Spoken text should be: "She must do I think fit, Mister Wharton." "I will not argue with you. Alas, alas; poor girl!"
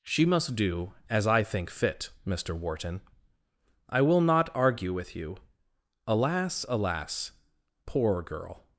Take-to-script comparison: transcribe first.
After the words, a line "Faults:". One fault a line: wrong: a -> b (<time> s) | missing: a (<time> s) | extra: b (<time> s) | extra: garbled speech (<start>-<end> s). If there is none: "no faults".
"She must do as I think fit, Mister Wharton." "I will not argue with you. Alas, alas; poor girl!"
Faults:
extra: as (1.1 s)